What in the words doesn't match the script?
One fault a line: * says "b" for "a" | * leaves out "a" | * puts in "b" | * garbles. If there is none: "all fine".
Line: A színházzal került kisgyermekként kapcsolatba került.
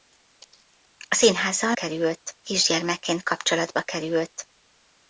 all fine